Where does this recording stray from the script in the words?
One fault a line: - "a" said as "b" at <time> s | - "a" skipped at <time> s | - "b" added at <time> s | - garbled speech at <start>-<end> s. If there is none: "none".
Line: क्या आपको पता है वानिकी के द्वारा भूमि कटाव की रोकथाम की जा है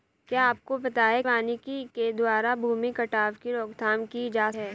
none